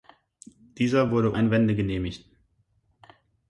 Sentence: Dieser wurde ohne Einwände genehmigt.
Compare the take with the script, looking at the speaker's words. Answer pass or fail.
fail